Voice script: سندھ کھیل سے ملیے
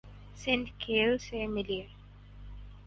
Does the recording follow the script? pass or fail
pass